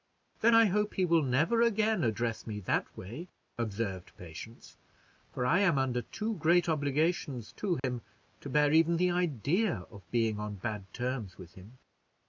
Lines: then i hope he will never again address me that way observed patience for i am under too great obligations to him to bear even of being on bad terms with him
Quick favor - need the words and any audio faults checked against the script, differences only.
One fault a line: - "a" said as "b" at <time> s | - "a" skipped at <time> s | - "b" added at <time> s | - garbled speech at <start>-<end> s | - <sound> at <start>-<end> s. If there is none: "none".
- dropout at 7.8-7.8 s
- "the idea" added at 8.9 s